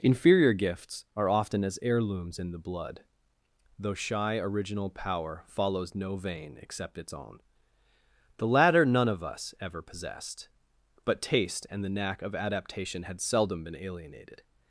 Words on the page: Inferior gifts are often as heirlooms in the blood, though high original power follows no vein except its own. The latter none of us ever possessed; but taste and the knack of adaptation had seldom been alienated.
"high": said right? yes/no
no